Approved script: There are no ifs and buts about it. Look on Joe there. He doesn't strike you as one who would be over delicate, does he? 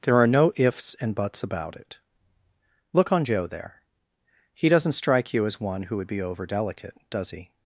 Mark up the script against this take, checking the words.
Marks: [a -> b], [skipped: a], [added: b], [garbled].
There are no ifs and buts about it. Look on Joe there. He doesn't strike you as one who would be over delicate, does he?